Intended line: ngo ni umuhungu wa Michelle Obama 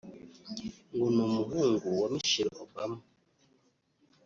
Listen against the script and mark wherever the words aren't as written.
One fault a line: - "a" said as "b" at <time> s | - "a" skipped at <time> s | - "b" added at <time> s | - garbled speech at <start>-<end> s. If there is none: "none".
none